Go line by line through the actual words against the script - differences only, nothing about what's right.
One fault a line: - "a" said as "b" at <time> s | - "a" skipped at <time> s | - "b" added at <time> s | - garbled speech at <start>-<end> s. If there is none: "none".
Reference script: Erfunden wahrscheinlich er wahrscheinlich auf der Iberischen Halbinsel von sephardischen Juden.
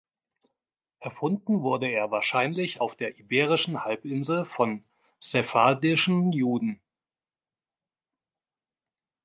- "wahrscheinlich" said as "wurde" at 1.6 s